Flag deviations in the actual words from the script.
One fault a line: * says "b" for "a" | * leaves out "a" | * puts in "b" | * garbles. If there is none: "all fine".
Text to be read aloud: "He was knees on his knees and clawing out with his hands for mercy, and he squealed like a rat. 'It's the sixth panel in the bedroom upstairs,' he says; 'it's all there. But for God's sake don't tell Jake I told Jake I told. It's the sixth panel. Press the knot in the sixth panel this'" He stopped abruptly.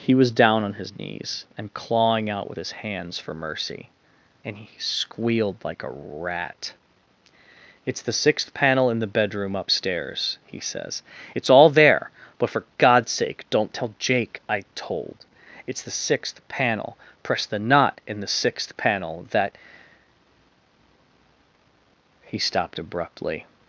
* says "down" for "knees"
* leaves out "Jake I told"
* says "that" for "this"